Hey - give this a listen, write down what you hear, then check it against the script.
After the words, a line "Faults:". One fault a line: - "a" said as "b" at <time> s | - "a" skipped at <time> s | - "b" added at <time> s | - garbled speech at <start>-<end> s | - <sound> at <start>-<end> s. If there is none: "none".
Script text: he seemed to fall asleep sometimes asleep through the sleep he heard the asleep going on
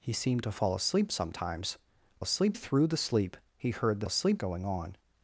he seemed to fall asleep sometimes asleep through the sleep he heard the asleep going on
Faults:
none